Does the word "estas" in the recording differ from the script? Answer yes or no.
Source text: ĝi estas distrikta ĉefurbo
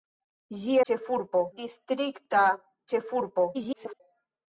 yes